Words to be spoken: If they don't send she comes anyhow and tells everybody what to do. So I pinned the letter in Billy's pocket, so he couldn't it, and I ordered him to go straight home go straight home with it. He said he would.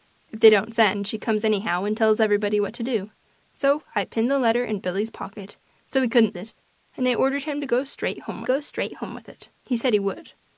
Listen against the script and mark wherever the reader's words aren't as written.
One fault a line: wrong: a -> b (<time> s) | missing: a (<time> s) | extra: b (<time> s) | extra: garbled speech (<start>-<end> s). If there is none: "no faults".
no faults